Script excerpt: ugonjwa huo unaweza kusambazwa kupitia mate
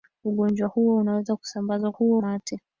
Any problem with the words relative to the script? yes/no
yes